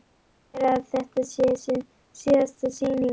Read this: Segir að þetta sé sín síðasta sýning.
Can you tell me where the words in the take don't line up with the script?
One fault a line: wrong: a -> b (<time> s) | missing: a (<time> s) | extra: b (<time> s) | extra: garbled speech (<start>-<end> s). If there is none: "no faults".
no faults